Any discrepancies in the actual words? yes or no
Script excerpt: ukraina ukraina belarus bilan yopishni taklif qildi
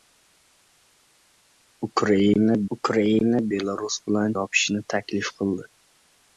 no